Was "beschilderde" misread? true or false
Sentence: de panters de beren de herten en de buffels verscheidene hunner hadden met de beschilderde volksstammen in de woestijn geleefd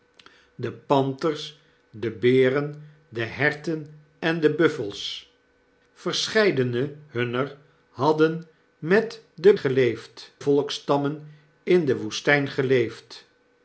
true